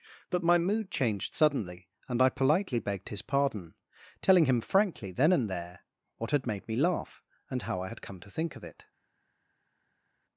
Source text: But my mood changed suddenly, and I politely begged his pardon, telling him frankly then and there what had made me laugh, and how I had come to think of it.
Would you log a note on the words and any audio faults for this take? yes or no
no